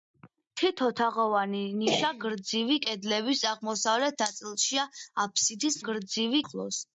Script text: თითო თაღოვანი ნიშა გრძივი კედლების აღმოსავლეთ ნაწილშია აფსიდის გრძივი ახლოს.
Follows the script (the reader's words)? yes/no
yes